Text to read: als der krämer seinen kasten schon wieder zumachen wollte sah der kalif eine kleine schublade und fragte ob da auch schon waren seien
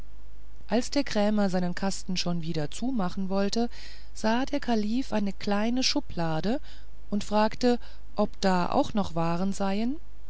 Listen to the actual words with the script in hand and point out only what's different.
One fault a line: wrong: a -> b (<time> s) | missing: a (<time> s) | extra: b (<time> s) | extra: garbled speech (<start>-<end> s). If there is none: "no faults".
wrong: schon -> noch (8.9 s)